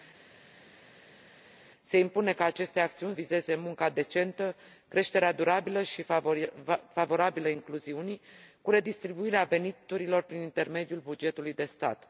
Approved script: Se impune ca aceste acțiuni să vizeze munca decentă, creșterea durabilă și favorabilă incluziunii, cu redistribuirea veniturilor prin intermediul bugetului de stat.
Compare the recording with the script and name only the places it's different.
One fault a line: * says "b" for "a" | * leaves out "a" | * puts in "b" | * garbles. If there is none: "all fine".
* leaves out "să"